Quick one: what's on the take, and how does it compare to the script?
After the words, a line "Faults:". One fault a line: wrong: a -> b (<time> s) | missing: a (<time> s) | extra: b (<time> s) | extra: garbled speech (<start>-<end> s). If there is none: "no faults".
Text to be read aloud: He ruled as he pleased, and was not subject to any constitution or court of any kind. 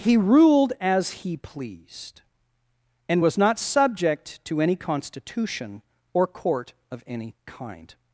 He ruled as he pleased, and was not subject to any constitution or court of any kind.
Faults:
no faults